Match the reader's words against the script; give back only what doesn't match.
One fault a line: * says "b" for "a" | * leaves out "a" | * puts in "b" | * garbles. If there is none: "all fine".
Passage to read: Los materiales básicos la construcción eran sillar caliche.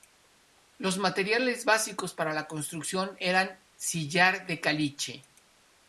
* puts in "para"
* puts in "de"